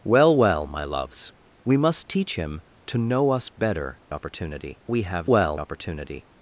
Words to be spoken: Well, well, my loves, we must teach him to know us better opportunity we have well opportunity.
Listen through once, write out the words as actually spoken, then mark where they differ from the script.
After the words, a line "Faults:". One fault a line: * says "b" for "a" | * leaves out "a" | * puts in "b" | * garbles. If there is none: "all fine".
Well, well, my loves, we must teach him to know us better opportunity we have well opportunity.
Faults:
all fine